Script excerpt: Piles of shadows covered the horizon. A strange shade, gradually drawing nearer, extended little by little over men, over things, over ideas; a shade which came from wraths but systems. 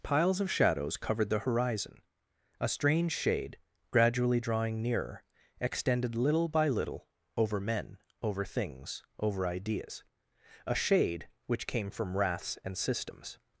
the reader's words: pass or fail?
fail